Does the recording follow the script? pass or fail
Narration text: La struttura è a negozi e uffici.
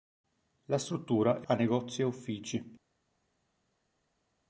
pass